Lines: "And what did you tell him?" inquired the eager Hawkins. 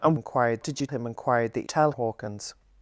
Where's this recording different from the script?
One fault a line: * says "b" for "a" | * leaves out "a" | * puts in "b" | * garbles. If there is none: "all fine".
* says "inquired" for "what"
* leaves out "tell"
* says "tell" for "eager"